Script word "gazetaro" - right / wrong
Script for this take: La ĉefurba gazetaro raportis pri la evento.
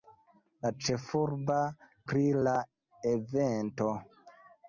wrong